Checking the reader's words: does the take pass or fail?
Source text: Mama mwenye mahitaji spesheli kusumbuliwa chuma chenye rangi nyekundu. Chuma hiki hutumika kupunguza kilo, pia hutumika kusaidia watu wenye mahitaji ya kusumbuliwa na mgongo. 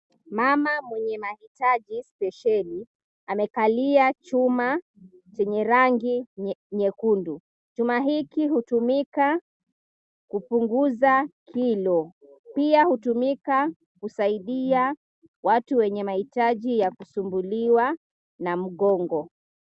fail